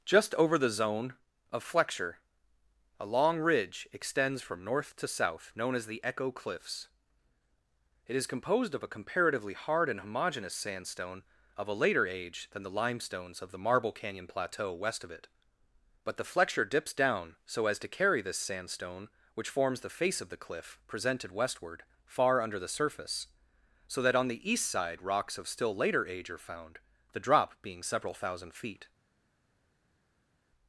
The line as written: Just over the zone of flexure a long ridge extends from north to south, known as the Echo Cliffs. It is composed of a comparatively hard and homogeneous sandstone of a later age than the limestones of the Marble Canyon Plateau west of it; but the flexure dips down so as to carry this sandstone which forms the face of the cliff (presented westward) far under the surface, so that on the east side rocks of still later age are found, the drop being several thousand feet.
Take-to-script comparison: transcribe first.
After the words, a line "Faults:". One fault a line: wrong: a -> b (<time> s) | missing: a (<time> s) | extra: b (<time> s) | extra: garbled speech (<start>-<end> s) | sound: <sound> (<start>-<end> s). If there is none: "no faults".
Just over the zone of flexure a long ridge extends from north to south, known as the Echo Cliffs. It is composed of a comparatively hard and homogeneous sandstone of a later age than the limestones of the Marble Canyon Plateau west of it; but the flexure dips down so as to carry this sandstone which forms the face of the cliff (presented westward) far under the surface, so that on the east side rocks of still later age are found, the drop being several thousand feet.
Faults:
no faults